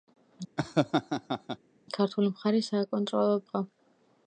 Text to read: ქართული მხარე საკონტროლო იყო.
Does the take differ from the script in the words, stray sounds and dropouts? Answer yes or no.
yes